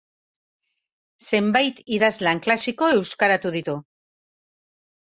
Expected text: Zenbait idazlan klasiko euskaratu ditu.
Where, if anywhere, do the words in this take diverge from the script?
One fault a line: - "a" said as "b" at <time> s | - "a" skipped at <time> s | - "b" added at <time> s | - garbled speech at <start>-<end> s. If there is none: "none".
none